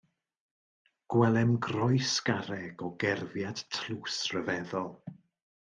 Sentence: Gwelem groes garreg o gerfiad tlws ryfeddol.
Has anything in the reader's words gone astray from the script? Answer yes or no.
no